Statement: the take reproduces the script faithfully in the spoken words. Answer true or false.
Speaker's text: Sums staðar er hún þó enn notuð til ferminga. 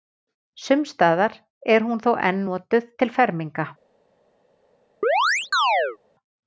true